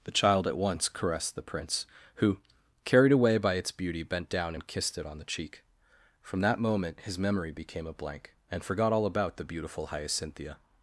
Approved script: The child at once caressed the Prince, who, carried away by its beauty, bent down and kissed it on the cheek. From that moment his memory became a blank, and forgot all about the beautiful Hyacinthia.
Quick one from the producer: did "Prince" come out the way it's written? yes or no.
yes